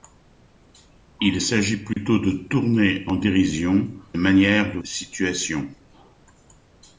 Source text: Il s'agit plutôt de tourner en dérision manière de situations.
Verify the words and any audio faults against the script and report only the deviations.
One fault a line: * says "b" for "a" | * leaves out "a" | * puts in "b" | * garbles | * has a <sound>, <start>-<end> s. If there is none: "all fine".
* has a dropout, 1.9-2.0 s